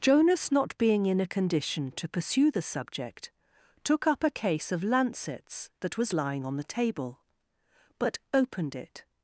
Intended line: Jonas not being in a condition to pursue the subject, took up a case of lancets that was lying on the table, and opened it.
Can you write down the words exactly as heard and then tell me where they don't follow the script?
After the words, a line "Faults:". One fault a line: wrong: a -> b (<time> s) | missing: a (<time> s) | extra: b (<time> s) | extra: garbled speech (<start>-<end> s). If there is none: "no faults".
Jonas not being in a condition to pursue the subject, took up a case of lancets that was lying on the table, but opened it.
Faults:
wrong: and -> but (8.0 s)